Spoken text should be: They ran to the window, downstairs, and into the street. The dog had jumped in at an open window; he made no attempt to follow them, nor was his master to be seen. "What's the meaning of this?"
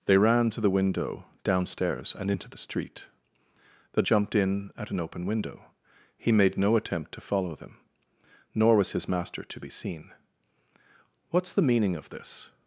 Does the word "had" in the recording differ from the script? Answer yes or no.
yes